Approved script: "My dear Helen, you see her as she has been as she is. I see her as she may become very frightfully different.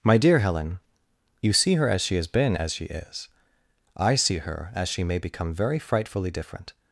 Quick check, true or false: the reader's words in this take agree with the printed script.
true